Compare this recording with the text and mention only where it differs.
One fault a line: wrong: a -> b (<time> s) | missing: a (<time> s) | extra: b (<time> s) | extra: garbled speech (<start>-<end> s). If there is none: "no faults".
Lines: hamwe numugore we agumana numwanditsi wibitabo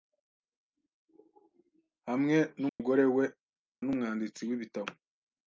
missing: agumana (3.2 s)